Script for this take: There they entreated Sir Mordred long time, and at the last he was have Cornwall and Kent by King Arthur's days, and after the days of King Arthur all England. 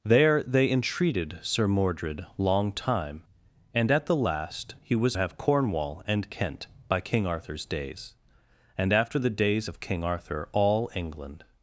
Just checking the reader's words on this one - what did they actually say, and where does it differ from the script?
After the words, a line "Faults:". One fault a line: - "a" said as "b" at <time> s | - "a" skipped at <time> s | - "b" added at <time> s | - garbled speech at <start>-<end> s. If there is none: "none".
There they entreated Sir Mordred long time, and at the last he was have Cornwall and Kent by King Arthur's days, and after the days of King Arthur all England.
Faults:
none